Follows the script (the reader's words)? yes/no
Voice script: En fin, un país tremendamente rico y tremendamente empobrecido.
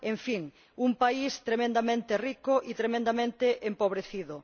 yes